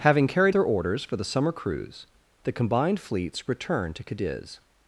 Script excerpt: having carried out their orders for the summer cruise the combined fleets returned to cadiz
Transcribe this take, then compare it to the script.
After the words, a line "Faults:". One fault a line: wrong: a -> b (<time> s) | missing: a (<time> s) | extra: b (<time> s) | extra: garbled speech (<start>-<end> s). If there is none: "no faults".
having carried their orders for the summer cruise the combined fleets returned to cadiz
Faults:
missing: out (0.6 s)